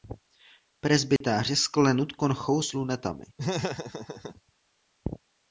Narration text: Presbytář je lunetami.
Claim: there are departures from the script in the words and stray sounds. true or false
true